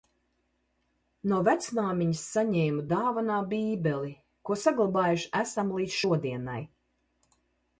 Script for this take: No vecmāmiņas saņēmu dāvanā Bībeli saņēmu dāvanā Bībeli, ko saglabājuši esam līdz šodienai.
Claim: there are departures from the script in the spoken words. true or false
true